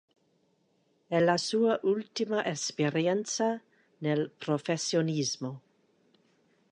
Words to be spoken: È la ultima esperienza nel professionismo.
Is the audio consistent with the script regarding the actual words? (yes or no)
no